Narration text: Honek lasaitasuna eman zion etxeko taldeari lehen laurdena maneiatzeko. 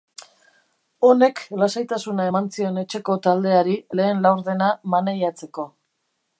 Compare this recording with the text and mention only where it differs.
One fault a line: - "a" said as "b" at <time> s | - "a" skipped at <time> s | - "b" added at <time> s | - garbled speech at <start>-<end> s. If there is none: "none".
none